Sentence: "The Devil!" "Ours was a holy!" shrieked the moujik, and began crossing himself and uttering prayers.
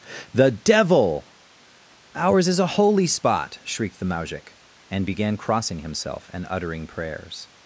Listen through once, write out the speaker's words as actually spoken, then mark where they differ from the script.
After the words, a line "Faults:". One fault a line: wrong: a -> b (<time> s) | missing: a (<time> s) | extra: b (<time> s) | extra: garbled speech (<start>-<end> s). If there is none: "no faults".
"The Devil!" "Ours is a holy spot!" shrieked the moujik, and began crossing himself and uttering prayers.
Faults:
wrong: was -> is (2.5 s)
extra: spot (3.1 s)